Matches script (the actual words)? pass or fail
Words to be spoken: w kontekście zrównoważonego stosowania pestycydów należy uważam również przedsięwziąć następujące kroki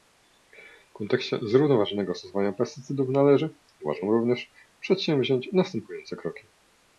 pass